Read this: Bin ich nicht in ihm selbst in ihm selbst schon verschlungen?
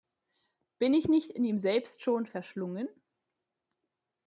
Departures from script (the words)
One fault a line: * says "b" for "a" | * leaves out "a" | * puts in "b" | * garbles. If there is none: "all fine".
* leaves out "in ihm selbst"